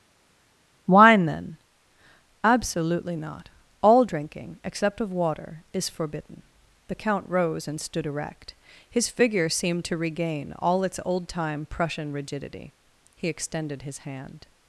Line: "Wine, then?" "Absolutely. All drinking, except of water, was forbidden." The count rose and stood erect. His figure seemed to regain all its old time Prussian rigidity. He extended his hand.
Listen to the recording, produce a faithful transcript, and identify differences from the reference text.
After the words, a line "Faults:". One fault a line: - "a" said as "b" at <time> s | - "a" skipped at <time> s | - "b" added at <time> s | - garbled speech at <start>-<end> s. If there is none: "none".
"Wine, then?" "Absolutely not. All drinking, except of water, is forbidden." The count rose and stood erect. His figure seemed to regain all its old time Prussian rigidity. He extended his hand.
Faults:
- "not" added at 3.2 s
- "was" said as "is" at 5.7 s